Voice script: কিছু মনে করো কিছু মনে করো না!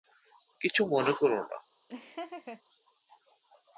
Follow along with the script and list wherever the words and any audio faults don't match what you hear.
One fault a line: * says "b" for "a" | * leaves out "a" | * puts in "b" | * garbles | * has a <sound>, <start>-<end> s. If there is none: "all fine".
* leaves out "কিছু মনে করো"
* has a laugh, 1.9-2.6 s